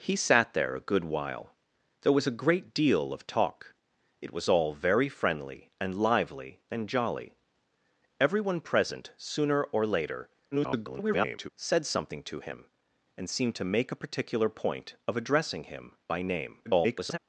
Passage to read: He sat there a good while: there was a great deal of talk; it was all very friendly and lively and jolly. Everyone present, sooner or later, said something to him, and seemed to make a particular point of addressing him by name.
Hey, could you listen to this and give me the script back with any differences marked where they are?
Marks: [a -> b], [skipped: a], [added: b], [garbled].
He sat there a good while: there was a great deal of talk; it was all very friendly and lively and jolly. Everyone present, sooner or later, [garbled] said something to him, and seemed to make a particular point of addressing him by name. [garbled]